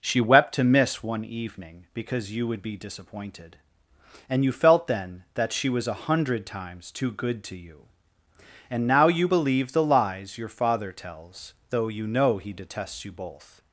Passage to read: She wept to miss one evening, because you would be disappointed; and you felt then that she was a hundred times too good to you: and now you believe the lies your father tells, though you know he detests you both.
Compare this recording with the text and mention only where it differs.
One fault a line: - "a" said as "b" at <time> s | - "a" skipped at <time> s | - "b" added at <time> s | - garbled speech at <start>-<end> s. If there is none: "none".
none